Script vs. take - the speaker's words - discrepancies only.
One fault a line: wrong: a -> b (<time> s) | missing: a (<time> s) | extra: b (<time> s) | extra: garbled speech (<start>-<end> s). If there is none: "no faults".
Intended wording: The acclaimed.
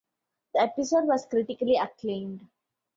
extra: episode was critically (0.6 s)